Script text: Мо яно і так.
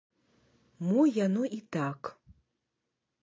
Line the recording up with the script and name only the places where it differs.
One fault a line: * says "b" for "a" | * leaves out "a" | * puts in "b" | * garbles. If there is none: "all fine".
all fine